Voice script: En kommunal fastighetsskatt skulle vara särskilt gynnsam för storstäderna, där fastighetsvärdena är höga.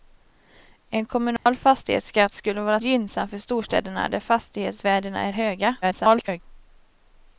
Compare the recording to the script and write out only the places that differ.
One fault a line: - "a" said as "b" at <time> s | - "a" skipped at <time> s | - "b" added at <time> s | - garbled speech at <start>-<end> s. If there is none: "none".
- "särskilt" skipped at 2.8 s
- garbled speech at 5.8-6.4 s